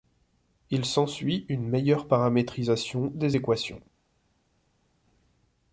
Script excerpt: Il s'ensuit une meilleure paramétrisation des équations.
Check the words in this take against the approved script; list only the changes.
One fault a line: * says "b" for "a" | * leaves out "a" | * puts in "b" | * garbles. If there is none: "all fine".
all fine